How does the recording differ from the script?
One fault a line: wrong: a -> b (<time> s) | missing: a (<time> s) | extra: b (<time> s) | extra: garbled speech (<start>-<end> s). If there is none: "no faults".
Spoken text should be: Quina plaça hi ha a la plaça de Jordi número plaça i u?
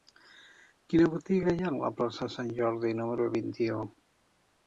wrong: plaça -> botiga (1.1 s)
extra: Sant (2.4 s)
wrong: plaça -> vint (3.4 s)